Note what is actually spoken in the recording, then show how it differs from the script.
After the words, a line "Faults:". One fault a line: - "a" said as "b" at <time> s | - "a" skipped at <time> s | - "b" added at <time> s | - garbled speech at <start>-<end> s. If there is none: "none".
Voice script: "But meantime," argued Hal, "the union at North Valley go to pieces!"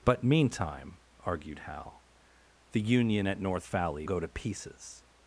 "But meantime," argued Hal, "the union at North Valley go to pieces!"
Faults:
none